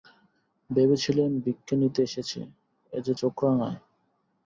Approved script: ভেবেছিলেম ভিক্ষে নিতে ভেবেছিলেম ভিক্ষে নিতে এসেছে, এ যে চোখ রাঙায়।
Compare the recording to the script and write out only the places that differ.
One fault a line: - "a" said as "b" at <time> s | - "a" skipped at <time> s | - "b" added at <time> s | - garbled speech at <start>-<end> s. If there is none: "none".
- "ভেবেছিলেম ভিক্ষে নিতে" skipped at 2.0 s